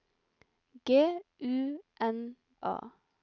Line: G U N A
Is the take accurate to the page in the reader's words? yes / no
yes